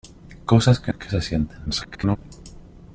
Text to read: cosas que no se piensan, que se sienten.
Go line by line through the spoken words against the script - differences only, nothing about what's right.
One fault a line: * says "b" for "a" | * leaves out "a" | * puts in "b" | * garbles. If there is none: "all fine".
* leaves out "no se piensan"
* garbles